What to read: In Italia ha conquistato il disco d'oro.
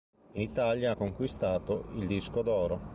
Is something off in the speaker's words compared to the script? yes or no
no